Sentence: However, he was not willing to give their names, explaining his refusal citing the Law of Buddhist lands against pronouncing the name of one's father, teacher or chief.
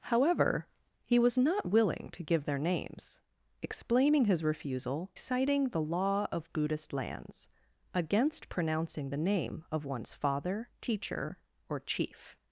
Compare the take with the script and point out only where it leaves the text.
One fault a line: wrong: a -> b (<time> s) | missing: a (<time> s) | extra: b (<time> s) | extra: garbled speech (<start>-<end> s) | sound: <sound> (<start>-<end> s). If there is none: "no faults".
no faults